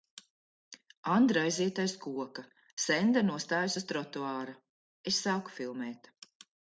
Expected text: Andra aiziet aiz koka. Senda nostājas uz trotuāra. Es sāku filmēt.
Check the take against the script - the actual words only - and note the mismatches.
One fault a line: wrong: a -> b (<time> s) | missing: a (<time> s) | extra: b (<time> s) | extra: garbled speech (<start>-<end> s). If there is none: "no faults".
no faults